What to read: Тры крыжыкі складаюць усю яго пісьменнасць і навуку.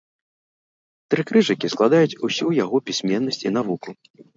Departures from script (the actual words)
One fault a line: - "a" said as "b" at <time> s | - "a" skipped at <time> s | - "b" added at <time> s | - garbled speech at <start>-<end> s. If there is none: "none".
none